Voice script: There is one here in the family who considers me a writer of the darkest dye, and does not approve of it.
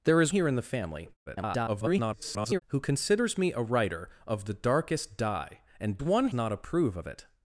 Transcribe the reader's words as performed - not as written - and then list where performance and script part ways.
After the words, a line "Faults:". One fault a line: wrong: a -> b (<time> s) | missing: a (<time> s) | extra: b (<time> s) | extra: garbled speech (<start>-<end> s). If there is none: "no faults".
There is here in the family [garbled] who considers me a writer of the darkest dye, and one not approve of it.
Faults:
missing: one (0.3 s)
extra: garbled speech (1.3-2.6 s)
wrong: does -> one (6.0 s)